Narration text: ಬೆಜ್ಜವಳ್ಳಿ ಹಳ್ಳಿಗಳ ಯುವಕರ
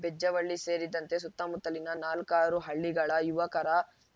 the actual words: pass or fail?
fail